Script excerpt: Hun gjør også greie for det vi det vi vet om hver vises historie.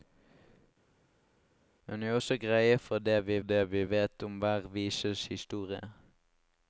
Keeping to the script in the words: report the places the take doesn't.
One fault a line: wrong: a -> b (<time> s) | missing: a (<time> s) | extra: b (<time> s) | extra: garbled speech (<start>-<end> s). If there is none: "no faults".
no faults